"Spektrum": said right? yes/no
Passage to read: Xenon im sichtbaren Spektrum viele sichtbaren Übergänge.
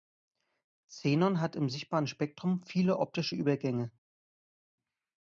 yes